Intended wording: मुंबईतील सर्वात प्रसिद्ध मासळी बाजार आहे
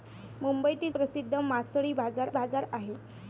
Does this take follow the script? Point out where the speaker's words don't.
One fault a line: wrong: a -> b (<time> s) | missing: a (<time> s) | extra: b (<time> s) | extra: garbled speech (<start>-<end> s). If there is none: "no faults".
missing: सर्वात (0.9 s)
extra: बाजार (2.3 s)